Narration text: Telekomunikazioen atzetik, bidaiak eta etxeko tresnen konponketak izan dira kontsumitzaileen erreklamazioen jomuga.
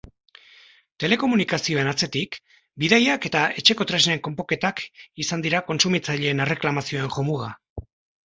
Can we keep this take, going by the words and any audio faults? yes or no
yes